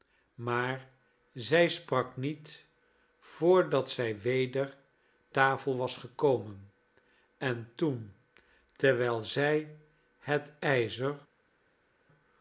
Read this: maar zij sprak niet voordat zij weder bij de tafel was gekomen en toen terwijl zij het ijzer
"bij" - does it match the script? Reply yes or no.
no